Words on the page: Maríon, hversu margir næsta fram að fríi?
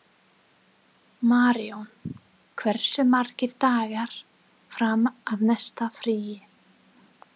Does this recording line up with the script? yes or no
no